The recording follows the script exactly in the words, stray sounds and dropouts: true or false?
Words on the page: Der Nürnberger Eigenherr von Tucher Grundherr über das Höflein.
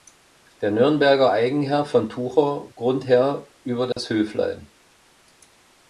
false